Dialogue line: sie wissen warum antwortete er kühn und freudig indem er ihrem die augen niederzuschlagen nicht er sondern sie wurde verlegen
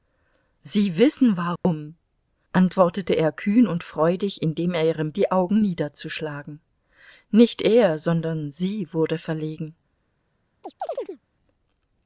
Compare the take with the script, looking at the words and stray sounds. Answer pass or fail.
fail